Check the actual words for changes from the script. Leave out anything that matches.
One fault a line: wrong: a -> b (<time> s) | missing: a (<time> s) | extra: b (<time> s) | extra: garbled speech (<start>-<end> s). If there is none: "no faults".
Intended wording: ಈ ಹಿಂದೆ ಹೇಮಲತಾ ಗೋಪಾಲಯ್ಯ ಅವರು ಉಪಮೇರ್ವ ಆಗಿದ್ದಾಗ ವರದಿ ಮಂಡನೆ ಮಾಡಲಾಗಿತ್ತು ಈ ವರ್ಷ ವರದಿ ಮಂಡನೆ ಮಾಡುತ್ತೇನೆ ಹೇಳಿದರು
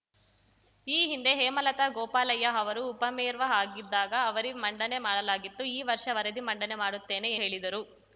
no faults